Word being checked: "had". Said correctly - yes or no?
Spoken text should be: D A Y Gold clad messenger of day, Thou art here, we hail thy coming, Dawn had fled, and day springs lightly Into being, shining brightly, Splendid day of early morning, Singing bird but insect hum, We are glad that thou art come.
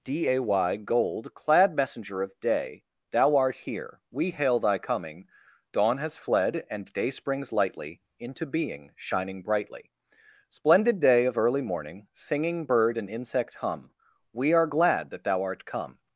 no